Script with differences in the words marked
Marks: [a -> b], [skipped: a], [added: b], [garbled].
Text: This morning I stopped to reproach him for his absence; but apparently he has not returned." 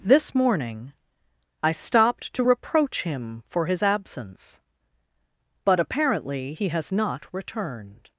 This morning I stopped to reproach him for his absence; but apparently he has not returned."